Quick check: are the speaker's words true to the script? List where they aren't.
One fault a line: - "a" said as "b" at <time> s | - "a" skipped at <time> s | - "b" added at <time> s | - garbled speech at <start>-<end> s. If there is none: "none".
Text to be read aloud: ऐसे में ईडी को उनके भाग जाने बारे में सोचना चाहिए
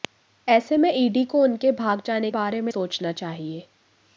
none